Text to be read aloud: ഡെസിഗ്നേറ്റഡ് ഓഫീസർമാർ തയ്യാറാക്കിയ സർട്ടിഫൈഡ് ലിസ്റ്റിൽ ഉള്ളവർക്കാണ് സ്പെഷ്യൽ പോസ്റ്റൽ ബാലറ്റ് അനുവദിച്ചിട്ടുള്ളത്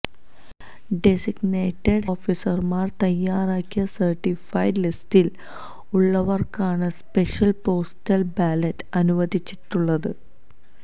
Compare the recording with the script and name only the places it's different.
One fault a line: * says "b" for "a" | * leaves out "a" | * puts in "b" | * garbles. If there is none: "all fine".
all fine